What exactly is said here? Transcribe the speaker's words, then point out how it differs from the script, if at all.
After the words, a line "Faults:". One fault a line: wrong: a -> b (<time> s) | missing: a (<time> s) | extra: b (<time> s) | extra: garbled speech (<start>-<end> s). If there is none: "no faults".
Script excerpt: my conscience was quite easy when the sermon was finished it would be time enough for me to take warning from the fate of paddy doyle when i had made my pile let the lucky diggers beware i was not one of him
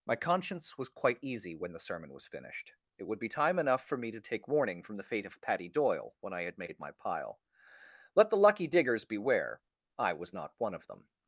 my conscience was quite easy when the sermon was finished it would be time enough for me to take warning from the fate of paddy doyle when i had made my pile let the lucky diggers beware i was not one of them
Faults:
wrong: him -> them (10.9 s)